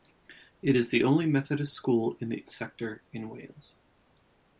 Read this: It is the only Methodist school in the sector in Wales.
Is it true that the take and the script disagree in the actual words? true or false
false